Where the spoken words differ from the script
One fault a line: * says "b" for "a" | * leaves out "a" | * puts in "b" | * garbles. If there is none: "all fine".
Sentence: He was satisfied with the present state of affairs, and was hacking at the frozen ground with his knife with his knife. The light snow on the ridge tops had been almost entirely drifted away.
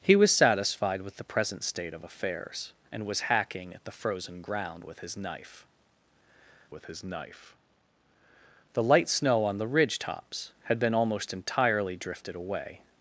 all fine